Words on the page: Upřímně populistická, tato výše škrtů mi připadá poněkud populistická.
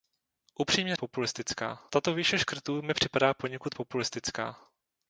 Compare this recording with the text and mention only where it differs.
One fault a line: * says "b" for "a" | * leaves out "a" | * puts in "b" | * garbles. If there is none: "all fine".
all fine